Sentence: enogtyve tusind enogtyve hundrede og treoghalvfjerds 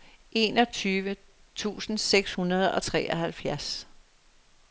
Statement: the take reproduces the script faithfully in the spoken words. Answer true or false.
false